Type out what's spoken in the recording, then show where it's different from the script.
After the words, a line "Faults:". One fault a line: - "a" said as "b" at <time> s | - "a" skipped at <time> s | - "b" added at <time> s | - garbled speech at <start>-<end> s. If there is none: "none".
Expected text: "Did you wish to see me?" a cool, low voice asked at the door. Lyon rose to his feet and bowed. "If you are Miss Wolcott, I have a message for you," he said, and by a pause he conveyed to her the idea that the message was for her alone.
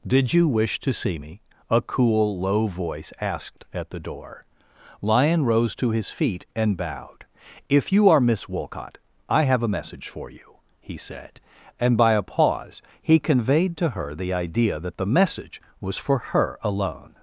"Did you wish to see me?" a cool, low voice asked at the door. Lyon rose to his feet and bowed. "If you are Miss Wolcott, I have a message for you," he said, and by a pause he conveyed to her the idea that the message was for her alone.
Faults:
none